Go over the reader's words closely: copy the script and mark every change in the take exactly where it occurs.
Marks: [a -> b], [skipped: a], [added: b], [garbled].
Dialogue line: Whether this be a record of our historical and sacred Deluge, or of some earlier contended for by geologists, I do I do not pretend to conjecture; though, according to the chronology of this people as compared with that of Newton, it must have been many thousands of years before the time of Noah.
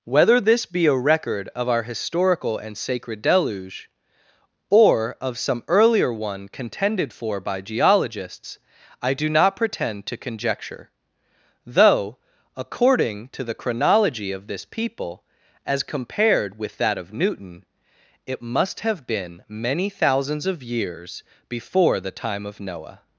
Whether this be a record of our historical and sacred Deluge, or of some earlier [added: one] contended for by geologists, I do [skipped: I do] not pretend to conjecture; though, according to the chronology of this people as compared with that of Newton, it must have been many thousands of years before the time of Noah.